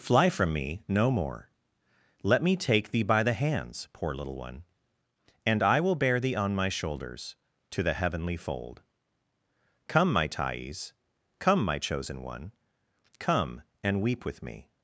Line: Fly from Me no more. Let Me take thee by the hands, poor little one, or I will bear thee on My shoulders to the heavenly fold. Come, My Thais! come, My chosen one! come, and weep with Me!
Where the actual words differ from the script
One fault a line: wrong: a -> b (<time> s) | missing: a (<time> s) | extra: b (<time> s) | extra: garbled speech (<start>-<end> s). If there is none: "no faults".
wrong: or -> and (5.5 s)